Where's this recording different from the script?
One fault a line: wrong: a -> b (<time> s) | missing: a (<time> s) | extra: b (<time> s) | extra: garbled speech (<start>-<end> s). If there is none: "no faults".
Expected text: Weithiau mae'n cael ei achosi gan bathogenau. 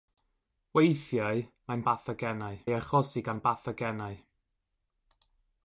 wrong: cael -> bathogenau (1.9 s)